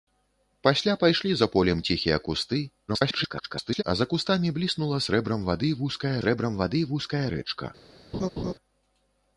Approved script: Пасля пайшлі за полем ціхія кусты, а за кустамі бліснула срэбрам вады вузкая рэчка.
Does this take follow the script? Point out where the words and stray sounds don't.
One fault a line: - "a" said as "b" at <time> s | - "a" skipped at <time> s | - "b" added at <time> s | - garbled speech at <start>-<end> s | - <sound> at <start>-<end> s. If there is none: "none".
- garbled speech at 2.9-3.8 s
- "срэбрам вады вузкая" added at 6.2 s
- laugh at 8.1-8.5 s